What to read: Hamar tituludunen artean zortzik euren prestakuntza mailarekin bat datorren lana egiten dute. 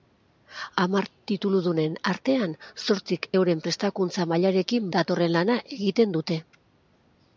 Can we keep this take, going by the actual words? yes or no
no